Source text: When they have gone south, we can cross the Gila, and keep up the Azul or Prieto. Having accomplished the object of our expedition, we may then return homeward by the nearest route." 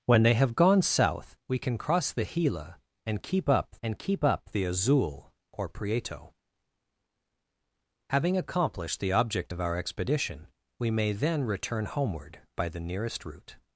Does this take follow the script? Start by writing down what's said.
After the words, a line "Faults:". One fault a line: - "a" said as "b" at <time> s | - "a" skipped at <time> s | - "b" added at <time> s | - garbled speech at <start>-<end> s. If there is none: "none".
When they have gone south, we can cross the Gila, and keep up and keep up the Azul or Prieto. Having accomplished the object of our expedition, we may then return homeward by the nearest route."
Faults:
- "and keep up" added at 3.8 s